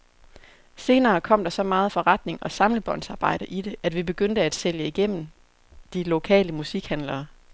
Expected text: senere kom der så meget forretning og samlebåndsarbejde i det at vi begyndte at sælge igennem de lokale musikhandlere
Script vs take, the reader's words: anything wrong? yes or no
no